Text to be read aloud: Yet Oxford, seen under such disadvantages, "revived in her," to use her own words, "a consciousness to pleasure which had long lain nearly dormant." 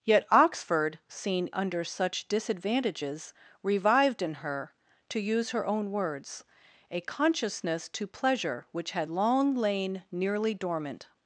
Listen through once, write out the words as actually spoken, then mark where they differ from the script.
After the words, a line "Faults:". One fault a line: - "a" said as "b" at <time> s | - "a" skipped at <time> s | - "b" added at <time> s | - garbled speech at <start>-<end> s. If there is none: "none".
Yet Oxford, seen under such disadvantages, "revived in her," to use her own words, "a consciousness to pleasure which had long lain nearly dormant."
Faults:
none